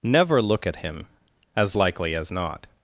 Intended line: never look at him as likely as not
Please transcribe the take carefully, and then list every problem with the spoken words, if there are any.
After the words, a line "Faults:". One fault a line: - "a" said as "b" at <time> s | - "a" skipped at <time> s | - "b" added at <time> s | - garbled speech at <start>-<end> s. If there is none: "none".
never look at him as likely as not
Faults:
none